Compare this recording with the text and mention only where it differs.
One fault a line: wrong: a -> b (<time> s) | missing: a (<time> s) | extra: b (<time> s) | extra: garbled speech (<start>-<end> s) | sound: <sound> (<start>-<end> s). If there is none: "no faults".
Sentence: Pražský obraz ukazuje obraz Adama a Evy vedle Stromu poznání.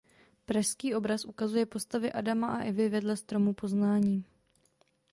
wrong: obraz -> postavy (1.6 s)